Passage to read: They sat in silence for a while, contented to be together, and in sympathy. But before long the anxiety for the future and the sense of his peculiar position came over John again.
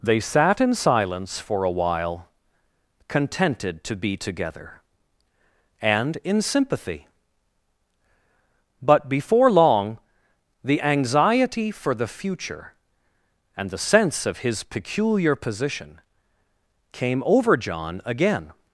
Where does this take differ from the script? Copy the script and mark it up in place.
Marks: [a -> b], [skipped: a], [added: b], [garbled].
They sat in silence for a while, contented to be together, and in sympathy. But before long the anxiety for the future and the sense of his peculiar position came over John again.